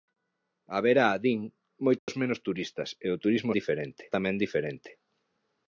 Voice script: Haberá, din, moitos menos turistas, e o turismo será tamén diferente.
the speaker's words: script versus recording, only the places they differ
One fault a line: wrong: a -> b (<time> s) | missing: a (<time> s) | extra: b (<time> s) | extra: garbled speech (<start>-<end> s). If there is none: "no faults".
wrong: será -> diferente (3.6 s)